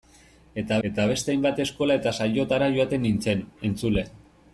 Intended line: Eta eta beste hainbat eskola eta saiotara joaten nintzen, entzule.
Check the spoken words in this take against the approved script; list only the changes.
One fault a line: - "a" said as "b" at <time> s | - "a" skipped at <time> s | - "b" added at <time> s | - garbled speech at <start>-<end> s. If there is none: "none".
none